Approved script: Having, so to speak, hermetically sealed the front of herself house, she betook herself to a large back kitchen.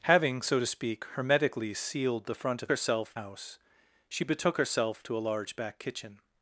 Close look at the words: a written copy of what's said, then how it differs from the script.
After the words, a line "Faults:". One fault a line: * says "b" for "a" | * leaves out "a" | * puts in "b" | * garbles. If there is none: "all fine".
Having, so to speak, hermetically sealed the front of herself house, she betook herself to a large back kitchen.
Faults:
all fine